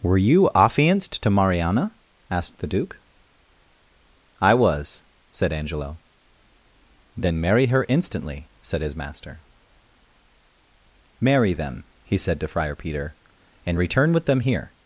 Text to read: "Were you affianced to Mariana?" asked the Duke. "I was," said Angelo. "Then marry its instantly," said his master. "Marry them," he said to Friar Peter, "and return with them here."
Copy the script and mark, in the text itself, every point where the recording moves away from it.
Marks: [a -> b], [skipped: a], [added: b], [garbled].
"Were you affianced to Mariana?" asked the Duke. "I was," said Angelo. "Then marry [its -> her] instantly," said his master. "Marry them," he said to Friar Peter, "and return with them here."